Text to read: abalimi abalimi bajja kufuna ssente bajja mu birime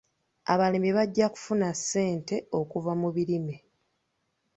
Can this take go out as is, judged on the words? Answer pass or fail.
fail